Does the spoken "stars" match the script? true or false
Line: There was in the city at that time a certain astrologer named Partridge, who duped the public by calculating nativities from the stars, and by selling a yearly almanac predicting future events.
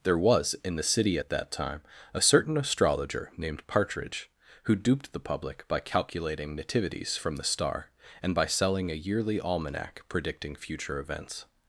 false